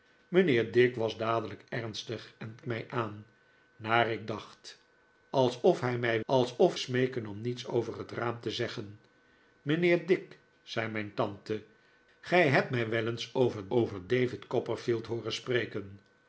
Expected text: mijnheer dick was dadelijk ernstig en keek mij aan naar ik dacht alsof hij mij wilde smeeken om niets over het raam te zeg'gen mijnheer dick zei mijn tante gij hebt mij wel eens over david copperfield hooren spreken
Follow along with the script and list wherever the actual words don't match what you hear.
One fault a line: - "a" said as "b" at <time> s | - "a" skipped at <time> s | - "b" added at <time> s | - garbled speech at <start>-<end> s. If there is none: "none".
- "keek" skipped at 2.6 s
- "wilde" said as "alsof" at 6.3 s
- "over" added at 13.7 s